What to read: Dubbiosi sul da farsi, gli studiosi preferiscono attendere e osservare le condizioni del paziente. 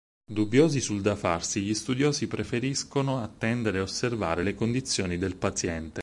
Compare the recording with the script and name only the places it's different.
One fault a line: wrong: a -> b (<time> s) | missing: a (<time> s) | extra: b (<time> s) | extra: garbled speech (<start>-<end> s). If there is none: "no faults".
no faults